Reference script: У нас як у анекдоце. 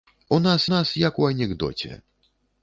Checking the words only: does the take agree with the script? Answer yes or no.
no